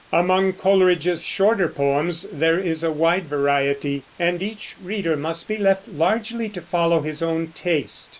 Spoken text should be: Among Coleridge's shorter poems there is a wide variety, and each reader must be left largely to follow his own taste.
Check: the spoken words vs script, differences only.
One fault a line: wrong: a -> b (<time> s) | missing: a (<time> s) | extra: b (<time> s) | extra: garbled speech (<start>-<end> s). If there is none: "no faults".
no faults